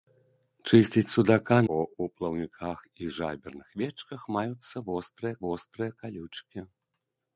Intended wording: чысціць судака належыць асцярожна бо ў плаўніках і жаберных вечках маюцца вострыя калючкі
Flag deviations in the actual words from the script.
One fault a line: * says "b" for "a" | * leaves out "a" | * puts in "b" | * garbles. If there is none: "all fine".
* leaves out "належыць асцярожна"
* puts in "вострыя"